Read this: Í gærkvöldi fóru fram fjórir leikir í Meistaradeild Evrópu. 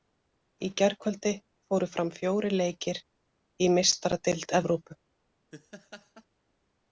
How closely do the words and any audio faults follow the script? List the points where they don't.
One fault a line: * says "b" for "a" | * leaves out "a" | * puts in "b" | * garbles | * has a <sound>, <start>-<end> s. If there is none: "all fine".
* has a laugh, 5.5-6.2 s